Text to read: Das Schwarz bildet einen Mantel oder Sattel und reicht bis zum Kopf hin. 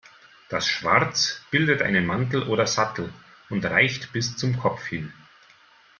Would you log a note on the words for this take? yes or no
no